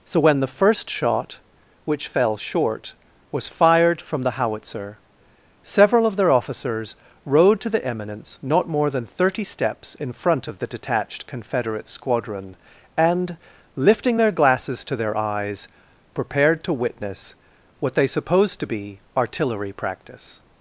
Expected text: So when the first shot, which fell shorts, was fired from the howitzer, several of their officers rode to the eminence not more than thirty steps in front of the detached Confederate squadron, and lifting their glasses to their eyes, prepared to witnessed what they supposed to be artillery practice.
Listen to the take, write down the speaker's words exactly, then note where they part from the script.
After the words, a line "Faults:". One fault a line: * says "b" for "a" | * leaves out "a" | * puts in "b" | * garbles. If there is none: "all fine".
So when the first shot, which fell short, was fired from the howitzer, several of their officers rode to the eminence not more than thirty steps in front of the detached Confederate squadron, and lifting their glasses to their eyes, prepared to witness what they supposed to be artillery practice.
Faults:
* says "short" for "shorts"
* says "witness" for "witnessed"